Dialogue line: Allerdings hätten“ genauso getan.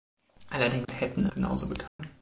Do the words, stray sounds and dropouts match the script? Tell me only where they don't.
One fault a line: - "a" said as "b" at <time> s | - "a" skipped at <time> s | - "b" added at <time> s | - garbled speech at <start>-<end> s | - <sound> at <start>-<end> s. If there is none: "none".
- dropout at 0.8-0.9 s
- dropout at 1.9-2.0 s